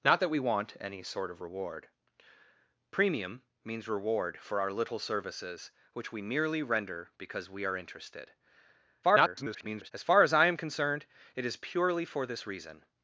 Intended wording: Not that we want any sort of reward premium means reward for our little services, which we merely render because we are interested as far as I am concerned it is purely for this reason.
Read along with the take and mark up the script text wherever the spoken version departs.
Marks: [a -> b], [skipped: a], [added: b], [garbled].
Not that we want any sort of reward premium means reward for our little services, which we merely render because we are interested [garbled] as far as I am concerned it is purely for this reason.